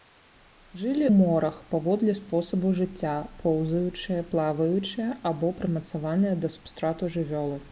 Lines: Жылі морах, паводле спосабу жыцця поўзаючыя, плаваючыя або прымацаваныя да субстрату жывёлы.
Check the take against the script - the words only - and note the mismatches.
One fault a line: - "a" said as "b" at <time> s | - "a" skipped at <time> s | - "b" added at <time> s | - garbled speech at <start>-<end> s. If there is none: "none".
none